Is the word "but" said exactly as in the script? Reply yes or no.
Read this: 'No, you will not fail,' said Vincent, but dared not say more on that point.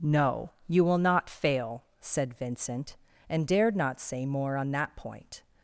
no